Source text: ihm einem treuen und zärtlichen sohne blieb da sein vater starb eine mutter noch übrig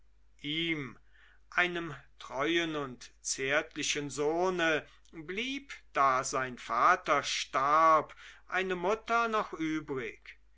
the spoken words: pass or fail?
pass